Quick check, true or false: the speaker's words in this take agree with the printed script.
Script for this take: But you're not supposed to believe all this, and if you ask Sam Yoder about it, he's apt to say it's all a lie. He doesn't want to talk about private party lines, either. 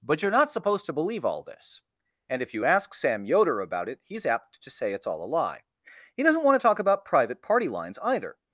true